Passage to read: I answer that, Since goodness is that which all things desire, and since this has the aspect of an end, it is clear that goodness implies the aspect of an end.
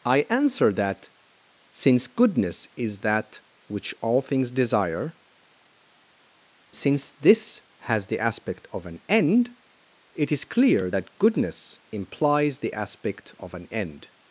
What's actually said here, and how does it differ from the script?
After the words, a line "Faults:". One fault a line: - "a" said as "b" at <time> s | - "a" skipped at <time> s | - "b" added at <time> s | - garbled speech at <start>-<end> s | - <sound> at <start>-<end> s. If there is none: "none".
I answer that, Since goodness is that which all things desire, since this has the aspect of an end, it is clear that goodness implies the aspect of an end.
Faults:
- "and" skipped at 5.2 s